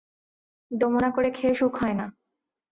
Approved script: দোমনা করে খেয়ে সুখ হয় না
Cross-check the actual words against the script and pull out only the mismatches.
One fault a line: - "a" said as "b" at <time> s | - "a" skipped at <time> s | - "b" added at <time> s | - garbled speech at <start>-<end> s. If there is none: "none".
none